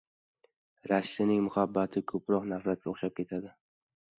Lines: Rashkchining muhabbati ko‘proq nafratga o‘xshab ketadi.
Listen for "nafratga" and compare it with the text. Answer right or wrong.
right